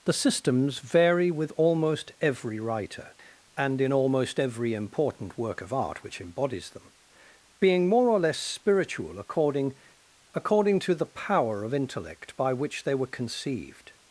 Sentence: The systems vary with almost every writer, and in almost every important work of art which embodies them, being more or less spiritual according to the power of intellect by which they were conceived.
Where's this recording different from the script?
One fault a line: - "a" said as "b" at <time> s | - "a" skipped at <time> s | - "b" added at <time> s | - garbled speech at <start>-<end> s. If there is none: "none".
- "according" added at 10.3 s